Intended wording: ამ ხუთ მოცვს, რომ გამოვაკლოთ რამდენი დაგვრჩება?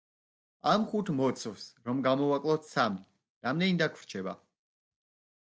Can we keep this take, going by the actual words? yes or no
no